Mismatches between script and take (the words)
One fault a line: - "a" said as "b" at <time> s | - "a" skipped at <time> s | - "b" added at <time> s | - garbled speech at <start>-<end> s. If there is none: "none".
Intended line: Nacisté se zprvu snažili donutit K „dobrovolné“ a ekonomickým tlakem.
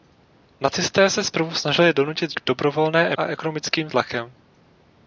none